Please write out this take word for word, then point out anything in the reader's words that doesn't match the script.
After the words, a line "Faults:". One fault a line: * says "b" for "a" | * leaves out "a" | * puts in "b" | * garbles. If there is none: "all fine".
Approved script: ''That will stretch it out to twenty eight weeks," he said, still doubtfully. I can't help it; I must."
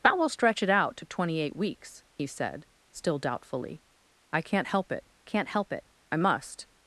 ''That will stretch it out to twenty eight weeks," he said, still doubtfully. I can't help it can't help it; I must."
Faults:
* puts in "can't help it"